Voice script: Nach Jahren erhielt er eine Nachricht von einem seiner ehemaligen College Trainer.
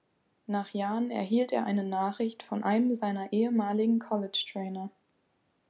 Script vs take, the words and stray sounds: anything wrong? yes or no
no